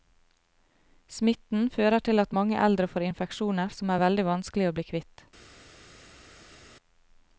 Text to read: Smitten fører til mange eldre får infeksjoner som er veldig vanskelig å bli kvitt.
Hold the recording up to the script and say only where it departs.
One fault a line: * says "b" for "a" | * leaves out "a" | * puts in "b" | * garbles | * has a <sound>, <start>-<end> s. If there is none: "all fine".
* puts in "at"